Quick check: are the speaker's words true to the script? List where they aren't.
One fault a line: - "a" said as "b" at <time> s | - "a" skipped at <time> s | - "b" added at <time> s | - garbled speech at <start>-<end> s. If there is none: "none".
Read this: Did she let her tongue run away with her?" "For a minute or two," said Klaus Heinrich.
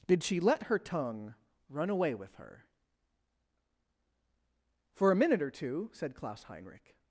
none